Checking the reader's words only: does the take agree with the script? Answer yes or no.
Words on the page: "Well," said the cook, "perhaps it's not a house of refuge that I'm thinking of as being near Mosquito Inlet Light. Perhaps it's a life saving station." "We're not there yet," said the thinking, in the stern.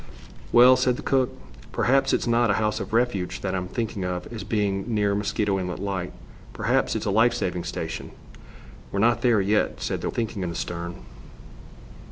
yes